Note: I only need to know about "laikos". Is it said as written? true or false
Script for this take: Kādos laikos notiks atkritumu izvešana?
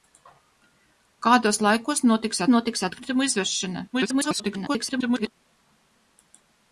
true